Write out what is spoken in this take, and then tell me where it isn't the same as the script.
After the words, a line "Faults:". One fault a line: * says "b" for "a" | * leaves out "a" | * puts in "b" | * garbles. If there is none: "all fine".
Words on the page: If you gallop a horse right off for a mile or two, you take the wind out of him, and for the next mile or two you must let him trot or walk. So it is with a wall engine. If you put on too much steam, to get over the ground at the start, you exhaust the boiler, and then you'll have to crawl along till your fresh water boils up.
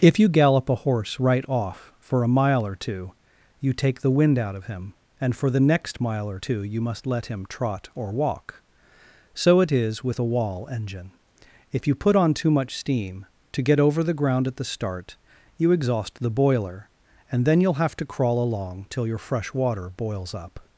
If you gallop a horse right off for a mile or two, you take the wind out of him, and for the next mile or two you must let him trot or walk. So it is with a wall engine. If you put on too much steam, to get over the ground at the start, you exhaust the boiler, and then you'll have to crawl along till your fresh water boils up.
Faults:
all fine